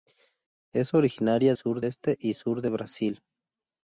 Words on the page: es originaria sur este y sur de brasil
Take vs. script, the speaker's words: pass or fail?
pass